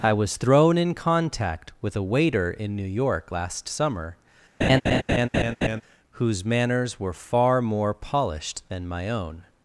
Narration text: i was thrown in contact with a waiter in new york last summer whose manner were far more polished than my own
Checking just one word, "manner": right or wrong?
wrong